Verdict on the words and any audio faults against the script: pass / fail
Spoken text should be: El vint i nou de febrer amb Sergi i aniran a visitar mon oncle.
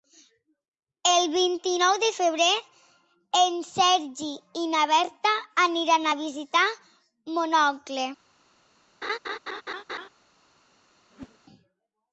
fail